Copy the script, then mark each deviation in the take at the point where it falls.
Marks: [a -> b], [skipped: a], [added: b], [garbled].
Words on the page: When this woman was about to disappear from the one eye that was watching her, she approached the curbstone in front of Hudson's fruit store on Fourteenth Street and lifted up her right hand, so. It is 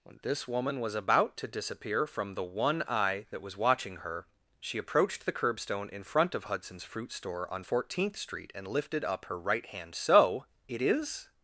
When this woman was about to disappear from the one eye that was watching her, she approached the curbstone in front of Hudson's fruit store on Fourteenth Street and lifted up her right hand, so. It is